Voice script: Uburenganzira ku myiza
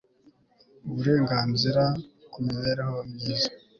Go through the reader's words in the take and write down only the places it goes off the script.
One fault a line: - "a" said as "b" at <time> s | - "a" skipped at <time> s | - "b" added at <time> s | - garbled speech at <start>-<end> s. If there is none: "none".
- "mibereho" added at 2.4 s